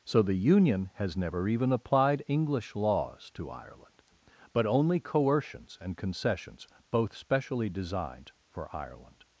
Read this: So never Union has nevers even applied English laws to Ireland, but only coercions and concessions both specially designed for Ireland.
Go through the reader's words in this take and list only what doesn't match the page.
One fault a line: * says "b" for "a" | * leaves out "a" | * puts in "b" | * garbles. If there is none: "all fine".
* says "the" for "never"
* says "never" for "nevers"